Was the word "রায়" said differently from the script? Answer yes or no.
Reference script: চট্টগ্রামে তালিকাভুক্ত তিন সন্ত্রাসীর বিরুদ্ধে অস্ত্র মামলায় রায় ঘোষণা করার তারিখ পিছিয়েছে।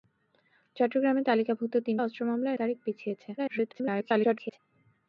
yes